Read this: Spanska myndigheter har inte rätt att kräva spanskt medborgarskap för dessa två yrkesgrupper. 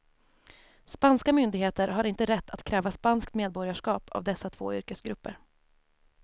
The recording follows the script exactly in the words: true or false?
false